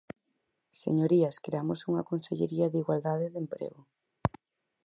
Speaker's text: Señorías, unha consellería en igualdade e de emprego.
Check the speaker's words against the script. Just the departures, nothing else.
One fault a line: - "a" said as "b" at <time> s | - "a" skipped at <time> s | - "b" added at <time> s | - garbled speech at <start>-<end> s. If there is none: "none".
- "creamos" added at 1.4 s
- "en" said as "de" at 2.7 s